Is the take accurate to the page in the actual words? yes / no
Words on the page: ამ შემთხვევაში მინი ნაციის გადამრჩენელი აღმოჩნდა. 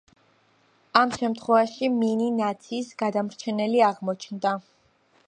yes